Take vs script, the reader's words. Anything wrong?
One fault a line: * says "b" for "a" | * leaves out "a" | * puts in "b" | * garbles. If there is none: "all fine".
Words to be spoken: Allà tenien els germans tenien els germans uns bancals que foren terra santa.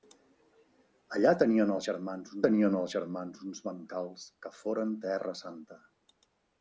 all fine